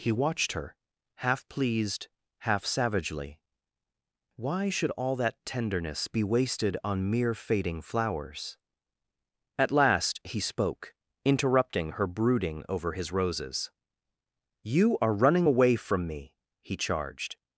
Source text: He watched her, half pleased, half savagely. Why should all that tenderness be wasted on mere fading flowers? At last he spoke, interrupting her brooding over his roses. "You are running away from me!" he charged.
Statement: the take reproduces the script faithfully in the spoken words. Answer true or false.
true